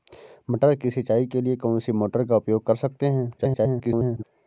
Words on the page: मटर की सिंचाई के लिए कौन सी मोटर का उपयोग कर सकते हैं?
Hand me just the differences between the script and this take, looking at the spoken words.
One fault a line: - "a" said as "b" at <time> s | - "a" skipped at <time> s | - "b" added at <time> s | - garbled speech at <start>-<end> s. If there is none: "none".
- garbled speech at 3.4-4.2 s